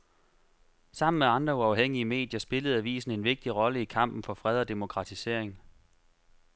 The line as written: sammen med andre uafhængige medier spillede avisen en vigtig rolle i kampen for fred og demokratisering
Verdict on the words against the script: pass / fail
pass